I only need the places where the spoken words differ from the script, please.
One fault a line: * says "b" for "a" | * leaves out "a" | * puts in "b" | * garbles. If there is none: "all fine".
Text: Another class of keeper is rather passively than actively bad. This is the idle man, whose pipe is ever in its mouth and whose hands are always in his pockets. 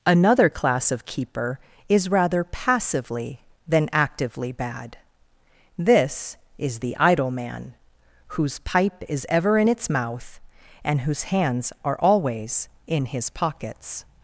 all fine